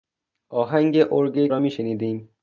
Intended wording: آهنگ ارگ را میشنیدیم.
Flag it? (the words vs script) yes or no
no